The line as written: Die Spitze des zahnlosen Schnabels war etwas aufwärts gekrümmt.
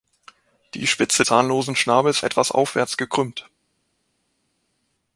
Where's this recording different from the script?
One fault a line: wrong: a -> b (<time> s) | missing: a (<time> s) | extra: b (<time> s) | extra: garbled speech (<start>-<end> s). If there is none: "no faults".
missing: des (1.2 s)
missing: war (2.2 s)